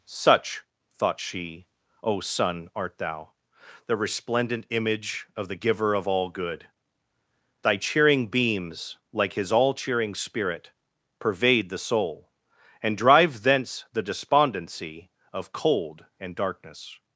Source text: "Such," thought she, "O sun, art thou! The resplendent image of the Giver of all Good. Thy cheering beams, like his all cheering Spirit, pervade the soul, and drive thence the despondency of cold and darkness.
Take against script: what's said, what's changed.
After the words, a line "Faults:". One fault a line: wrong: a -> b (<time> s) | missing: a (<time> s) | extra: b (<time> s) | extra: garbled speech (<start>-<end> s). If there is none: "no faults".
"Such," thought she, "O sun, art thou! The resplendent image of the Giver of all Good. Thy cheering beams, like his all cheering Spirit, pervade the soul, and drive thence the despondency of cold and darkness.
Faults:
no faults